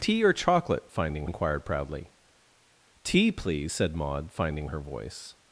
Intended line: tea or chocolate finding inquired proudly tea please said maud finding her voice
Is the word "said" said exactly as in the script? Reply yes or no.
yes